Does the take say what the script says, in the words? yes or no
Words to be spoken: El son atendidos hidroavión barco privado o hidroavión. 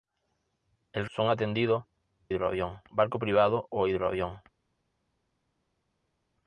yes